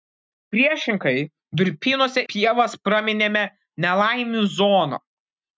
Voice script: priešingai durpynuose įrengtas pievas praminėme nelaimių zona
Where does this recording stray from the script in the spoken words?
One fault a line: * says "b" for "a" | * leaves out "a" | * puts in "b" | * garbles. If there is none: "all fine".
* leaves out "įrengtas"